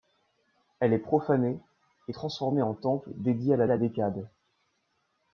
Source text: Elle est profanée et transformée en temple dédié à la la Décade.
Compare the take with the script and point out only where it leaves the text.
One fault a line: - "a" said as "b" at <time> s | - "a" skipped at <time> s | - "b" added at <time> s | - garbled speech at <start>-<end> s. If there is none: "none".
none